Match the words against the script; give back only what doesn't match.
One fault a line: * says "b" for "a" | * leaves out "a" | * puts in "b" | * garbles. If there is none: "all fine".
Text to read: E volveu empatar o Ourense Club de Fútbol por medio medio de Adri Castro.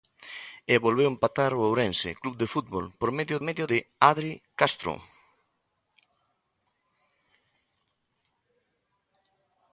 all fine